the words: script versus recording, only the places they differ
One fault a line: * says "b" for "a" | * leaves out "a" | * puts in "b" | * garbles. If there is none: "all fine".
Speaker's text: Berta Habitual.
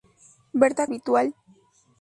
all fine